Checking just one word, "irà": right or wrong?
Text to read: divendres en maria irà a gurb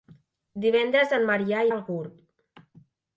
wrong